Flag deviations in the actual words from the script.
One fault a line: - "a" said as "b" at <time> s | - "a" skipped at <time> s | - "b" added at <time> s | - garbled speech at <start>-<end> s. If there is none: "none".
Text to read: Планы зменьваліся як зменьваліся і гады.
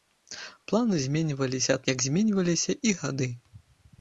none